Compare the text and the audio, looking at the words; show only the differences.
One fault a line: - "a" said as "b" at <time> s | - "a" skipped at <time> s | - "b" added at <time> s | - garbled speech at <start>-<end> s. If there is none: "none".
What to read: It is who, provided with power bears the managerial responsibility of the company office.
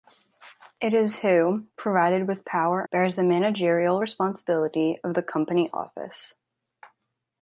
none